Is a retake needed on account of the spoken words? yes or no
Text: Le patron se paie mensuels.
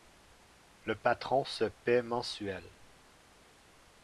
no